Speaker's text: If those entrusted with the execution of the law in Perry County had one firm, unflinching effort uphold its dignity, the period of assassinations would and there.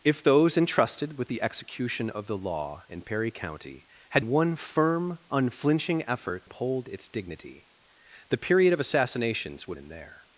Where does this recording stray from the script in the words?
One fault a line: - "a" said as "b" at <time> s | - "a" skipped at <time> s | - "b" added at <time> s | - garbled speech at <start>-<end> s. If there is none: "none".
none